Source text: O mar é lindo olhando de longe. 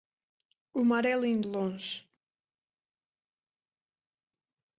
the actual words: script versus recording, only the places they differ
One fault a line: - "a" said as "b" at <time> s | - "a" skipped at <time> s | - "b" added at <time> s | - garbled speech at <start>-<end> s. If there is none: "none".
- "olhando" skipped at 1.5 s